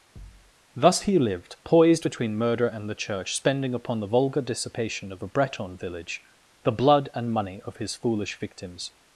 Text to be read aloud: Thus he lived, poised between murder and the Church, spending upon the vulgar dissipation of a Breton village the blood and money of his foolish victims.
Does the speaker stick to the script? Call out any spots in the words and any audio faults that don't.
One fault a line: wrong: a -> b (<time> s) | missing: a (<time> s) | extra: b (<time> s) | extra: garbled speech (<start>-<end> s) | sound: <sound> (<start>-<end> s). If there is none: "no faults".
sound: thud (0.2-0.5 s)